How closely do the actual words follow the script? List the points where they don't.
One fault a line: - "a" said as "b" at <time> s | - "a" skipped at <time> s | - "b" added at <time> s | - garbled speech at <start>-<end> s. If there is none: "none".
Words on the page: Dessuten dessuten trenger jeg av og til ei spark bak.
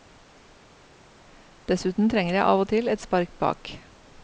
- "dessuten" skipped at 2.1 s
- "ei" said as "et" at 2.9 s